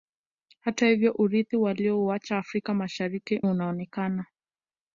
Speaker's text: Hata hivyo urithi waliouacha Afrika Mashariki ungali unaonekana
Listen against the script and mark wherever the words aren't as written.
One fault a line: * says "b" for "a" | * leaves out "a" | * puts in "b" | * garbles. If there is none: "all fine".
* leaves out "ungali"